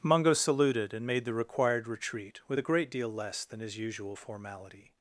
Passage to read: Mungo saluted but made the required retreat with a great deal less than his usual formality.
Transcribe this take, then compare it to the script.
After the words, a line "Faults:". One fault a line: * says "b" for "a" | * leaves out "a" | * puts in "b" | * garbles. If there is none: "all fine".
Mungo saluted and made the required retreat with a great deal less than his usual formality.
Faults:
* says "and" for "but"